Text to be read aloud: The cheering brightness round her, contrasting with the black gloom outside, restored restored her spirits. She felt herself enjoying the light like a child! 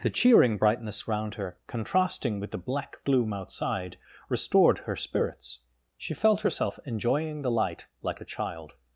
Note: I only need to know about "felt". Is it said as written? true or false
true